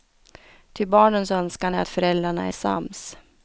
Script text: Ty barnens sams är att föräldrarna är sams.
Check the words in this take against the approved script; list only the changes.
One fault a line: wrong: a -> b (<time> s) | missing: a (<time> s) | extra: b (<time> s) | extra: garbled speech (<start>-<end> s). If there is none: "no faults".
wrong: sams -> önskan (1.3 s)